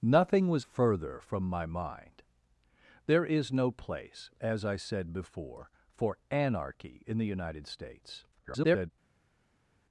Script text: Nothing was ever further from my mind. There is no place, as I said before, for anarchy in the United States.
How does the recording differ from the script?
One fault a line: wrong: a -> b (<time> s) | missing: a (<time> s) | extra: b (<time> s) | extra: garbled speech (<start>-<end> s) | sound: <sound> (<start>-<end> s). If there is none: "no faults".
missing: ever (0.7 s)
extra: garbled speech (8.3-8.9 s)